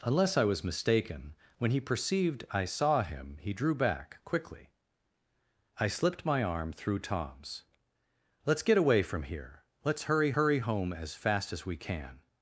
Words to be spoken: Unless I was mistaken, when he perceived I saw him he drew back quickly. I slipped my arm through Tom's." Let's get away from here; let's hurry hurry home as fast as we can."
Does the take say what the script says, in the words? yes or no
yes